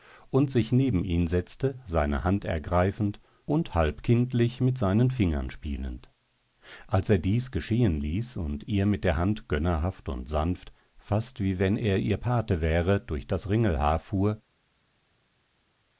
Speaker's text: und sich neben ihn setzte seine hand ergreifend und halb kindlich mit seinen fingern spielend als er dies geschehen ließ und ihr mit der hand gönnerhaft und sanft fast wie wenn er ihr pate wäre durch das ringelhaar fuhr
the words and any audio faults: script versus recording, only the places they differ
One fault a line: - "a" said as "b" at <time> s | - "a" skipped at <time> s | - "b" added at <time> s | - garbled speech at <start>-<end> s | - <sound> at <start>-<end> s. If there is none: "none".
none